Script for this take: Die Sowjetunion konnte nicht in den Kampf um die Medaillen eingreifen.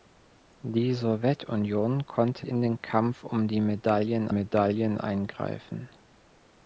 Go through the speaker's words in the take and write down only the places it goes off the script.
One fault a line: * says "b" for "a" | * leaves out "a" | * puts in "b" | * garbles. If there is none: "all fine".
* leaves out "nicht"
* puts in "Medaillen"